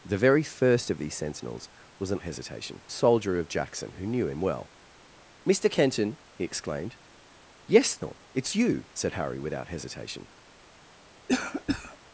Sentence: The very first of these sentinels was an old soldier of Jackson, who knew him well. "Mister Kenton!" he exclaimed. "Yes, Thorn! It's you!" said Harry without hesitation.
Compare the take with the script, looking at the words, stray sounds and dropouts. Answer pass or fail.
fail